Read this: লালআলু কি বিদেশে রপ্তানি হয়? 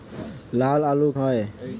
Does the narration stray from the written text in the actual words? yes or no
yes